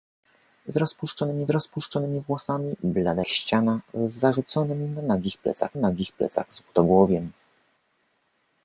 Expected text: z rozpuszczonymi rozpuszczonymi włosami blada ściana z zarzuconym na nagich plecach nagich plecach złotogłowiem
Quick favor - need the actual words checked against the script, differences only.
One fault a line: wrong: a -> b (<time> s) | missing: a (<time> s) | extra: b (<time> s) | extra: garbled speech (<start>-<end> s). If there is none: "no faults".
no faults